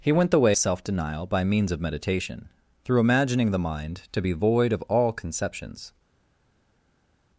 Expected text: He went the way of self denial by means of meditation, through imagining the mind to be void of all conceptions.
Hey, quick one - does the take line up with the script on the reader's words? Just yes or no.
no